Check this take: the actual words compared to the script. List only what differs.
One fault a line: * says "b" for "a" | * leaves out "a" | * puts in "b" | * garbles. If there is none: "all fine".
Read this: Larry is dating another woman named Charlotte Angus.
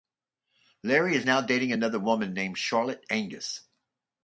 * puts in "now"